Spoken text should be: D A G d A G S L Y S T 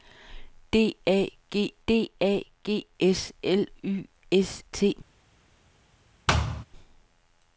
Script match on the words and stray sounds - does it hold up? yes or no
no